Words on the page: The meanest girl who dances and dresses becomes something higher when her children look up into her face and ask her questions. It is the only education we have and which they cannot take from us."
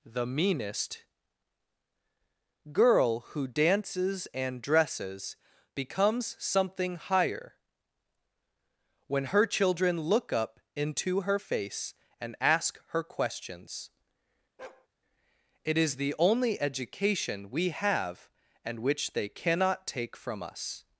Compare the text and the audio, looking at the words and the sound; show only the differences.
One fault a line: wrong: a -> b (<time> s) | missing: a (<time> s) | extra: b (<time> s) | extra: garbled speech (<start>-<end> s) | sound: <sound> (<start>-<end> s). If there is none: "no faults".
sound: bark (14.6-14.9 s)